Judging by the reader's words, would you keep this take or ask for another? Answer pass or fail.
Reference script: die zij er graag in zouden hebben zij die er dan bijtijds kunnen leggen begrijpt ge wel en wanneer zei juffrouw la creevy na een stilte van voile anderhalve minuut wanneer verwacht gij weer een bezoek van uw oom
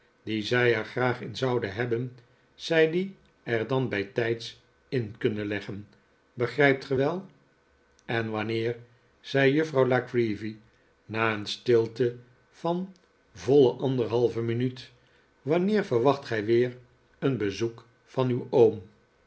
fail